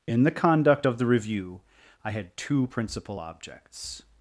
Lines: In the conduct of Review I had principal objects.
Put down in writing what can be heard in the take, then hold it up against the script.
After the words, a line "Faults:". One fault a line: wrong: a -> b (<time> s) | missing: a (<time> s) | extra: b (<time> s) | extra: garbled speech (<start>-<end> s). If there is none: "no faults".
In the conduct of the Review I had two principal objects.
Faults:
extra: the (1.0 s)
extra: two (2.3 s)